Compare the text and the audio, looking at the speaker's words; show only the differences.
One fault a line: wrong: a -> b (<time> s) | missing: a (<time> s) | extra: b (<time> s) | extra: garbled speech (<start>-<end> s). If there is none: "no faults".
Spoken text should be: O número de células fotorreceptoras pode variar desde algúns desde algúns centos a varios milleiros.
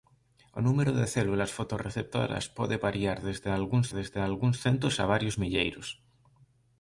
no faults